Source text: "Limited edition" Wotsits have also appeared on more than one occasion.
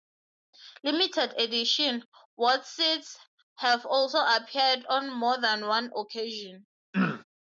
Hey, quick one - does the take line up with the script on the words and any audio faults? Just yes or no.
no